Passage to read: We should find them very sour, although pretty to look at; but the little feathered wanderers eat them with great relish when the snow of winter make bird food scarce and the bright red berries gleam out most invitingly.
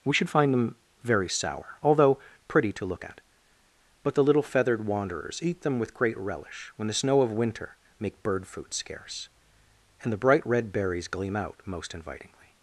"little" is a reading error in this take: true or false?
false